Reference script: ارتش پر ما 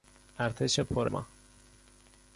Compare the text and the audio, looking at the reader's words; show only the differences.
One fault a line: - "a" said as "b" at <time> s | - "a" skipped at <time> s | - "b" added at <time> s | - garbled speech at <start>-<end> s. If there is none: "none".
none